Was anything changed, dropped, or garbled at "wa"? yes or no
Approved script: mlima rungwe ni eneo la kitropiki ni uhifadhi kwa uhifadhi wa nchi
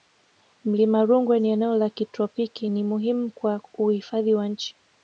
no